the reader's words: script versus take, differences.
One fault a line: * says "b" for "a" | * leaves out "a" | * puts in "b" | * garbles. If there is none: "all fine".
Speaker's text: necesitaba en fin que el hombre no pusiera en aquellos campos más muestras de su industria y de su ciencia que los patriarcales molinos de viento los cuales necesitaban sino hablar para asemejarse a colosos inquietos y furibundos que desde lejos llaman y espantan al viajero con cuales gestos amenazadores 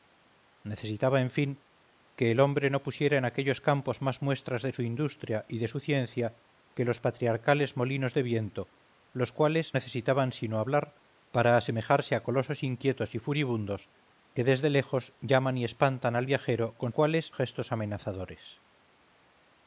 all fine